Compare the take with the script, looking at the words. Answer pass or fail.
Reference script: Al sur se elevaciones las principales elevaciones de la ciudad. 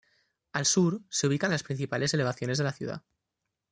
fail